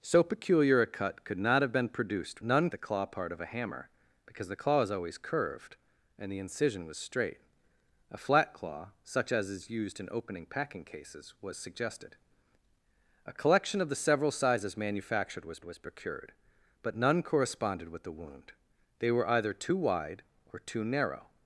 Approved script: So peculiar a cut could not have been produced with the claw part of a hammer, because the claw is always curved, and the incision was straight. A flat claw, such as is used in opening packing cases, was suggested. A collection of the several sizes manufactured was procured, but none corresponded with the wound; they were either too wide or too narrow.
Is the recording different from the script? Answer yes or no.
yes